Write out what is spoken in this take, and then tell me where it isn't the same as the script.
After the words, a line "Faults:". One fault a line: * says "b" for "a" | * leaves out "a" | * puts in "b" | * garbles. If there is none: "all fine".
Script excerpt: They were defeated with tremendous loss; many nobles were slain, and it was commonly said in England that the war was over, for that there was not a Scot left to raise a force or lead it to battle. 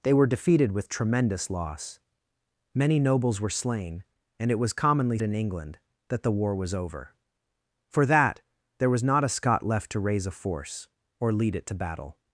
They were defeated with tremendous loss; many nobles were slain, and it was commonly in England that the war was over, for that there was not a Scot left to raise a force or lead it to battle.
Faults:
* leaves out "said"